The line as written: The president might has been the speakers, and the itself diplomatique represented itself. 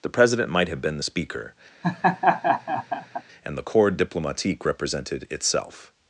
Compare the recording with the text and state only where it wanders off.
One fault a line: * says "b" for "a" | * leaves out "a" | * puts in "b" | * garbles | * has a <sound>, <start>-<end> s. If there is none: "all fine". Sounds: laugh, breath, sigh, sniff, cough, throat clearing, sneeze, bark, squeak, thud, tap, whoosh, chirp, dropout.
* says "have" for "has"
* says "speaker" for "speakers"
* has a laugh, 1.8-3.2 s
* says "corps" for "itself"